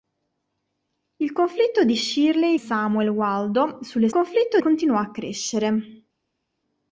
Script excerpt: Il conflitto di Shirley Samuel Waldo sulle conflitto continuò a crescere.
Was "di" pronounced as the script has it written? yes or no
yes